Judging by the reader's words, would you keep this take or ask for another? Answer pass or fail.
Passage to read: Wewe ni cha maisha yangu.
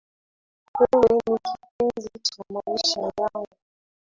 fail